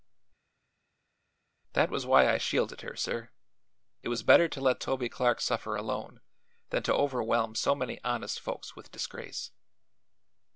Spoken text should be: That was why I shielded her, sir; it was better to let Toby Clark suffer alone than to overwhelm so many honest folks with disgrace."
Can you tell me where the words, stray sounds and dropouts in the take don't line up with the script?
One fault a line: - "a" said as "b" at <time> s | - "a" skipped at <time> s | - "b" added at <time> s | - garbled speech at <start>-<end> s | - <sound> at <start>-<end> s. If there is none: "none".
none